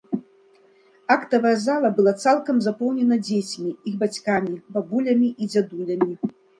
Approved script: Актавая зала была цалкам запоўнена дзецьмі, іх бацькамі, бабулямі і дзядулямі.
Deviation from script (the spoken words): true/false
false